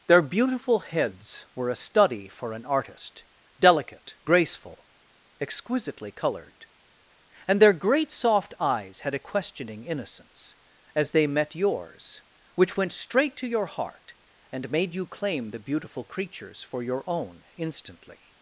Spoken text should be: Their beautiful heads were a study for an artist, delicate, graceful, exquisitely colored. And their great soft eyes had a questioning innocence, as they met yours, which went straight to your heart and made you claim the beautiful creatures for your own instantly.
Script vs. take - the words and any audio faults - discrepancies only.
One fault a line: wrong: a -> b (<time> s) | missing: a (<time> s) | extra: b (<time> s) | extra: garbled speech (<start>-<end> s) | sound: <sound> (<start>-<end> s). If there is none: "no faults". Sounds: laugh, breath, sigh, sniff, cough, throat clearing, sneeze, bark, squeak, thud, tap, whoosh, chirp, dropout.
no faults